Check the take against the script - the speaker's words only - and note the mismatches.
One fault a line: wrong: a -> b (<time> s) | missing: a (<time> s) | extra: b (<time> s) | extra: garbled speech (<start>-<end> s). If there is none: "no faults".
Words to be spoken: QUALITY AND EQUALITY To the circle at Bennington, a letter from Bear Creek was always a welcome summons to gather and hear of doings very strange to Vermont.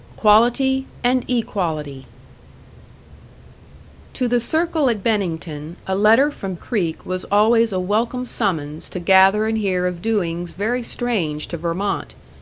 missing: Bear (6.5 s)